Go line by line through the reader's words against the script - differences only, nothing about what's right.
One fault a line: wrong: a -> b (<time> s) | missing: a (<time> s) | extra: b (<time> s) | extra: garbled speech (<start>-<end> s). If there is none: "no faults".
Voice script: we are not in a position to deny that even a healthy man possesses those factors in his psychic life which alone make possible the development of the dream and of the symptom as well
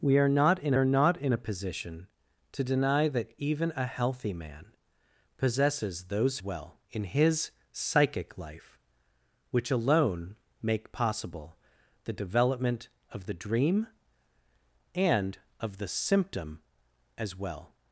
extra: are not in (0.7 s)
wrong: factors -> well (6.4 s)